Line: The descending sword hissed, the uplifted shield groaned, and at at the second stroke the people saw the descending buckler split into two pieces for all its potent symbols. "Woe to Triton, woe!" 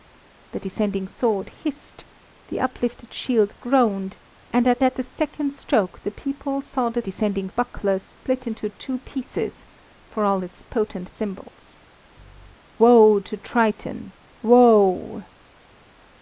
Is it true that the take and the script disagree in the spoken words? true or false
false